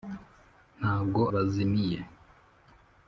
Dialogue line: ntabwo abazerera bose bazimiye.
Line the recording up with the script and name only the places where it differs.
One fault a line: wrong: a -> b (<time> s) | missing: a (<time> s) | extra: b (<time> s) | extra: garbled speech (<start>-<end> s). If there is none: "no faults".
missing: abazerera bose (1.2 s)